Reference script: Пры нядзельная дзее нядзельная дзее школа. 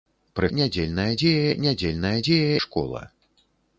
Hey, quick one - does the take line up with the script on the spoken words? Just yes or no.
yes